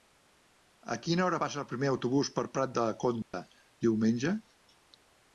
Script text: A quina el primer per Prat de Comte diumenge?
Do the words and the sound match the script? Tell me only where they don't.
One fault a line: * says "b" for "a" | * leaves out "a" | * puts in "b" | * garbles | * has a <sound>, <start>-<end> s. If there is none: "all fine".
* puts in "hora passa"
* puts in "autobús"
* has a dropout, 3.2-3.3 s